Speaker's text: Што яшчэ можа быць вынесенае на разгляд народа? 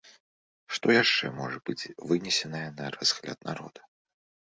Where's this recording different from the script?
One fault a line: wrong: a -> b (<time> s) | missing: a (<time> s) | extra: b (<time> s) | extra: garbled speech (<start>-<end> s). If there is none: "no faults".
no faults